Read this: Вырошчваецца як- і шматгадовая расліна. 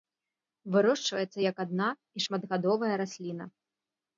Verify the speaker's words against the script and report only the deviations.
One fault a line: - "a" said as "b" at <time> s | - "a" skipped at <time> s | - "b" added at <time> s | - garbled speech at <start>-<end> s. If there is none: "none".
- "адна" added at 1.6 s